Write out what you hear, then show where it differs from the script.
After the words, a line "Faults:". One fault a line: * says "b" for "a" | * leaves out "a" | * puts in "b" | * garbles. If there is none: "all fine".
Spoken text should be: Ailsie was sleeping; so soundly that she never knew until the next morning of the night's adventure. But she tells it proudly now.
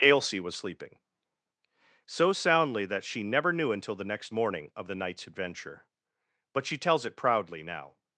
Ailsie was sleeping; so soundly that she never knew until the next morning of the night's adventure. But she tells it proudly now.
Faults:
all fine